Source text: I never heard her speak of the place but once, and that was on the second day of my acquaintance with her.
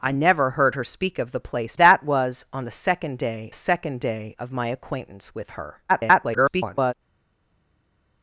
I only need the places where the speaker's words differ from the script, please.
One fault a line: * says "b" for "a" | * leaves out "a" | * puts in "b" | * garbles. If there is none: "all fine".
* leaves out "but once and"
* puts in "second day"
* garbles